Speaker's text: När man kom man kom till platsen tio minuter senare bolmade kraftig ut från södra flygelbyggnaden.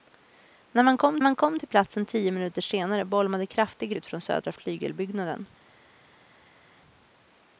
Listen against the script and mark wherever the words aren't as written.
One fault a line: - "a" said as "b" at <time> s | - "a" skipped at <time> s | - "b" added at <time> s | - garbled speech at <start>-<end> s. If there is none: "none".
none